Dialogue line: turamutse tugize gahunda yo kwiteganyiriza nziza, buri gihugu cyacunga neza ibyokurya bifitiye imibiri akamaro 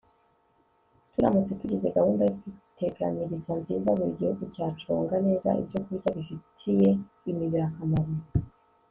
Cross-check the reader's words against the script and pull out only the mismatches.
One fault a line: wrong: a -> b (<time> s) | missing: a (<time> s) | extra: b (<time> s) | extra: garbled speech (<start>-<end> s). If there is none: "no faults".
no faults